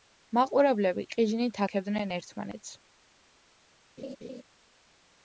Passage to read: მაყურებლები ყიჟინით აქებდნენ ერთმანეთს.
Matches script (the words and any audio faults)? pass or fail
fail